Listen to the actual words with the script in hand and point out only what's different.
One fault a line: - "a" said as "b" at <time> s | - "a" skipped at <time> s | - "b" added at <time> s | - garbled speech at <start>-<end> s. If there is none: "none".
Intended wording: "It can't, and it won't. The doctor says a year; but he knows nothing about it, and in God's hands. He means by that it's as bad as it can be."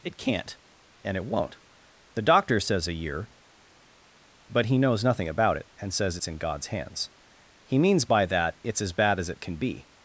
- "says it's" added at 5.9 s